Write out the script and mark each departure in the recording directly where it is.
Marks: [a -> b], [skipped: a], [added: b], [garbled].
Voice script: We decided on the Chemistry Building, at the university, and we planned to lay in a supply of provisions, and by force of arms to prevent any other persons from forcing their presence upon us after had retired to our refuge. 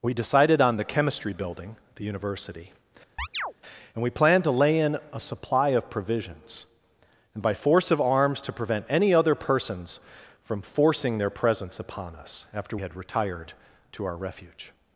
We decided on the Chemistry Building, at the university, and we planned to lay in a supply of provisions, and by force of arms to prevent any other persons from forcing their presence upon us after had retired to our refuge.